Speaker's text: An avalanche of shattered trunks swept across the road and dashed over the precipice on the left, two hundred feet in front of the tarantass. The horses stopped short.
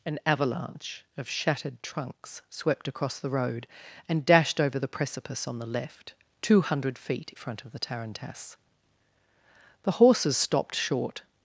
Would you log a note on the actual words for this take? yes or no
yes